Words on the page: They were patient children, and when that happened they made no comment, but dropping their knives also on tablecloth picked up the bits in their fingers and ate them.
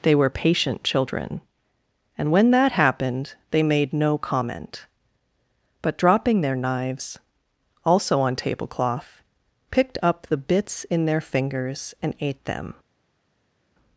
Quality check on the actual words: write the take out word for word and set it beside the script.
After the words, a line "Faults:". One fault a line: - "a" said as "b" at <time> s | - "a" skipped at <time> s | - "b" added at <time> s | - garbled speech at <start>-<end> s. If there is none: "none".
They were patient children, and when that happened they made no comment, but dropping their knives also on tablecloth picked up the bits in their fingers and ate them.
Faults:
none